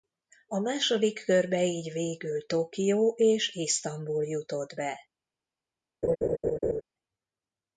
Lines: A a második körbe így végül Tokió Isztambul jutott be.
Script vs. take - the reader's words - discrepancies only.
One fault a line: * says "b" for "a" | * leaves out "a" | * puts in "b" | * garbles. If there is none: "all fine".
* leaves out "a"
* puts in "és"